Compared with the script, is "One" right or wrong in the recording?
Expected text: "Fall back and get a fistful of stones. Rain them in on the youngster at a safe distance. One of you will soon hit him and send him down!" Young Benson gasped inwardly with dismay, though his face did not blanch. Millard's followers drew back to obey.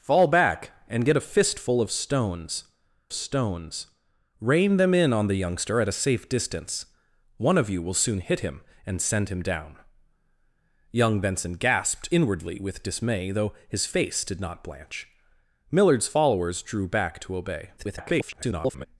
right